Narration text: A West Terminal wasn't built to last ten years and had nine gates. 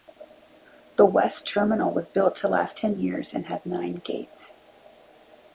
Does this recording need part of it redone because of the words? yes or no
yes